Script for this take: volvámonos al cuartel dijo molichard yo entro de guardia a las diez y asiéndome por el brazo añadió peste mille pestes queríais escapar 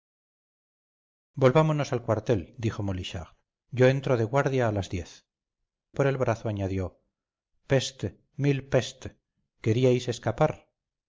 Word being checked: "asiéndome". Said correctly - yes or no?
no